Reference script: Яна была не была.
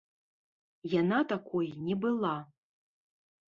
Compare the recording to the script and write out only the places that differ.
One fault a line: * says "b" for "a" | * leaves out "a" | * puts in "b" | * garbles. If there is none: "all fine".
* says "такой" for "была"